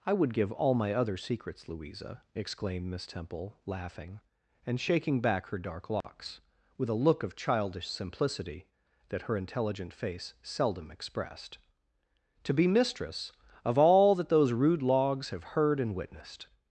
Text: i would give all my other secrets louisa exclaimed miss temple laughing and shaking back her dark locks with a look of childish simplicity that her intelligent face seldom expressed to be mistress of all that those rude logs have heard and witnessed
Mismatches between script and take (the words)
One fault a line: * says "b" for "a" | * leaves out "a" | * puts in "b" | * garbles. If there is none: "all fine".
all fine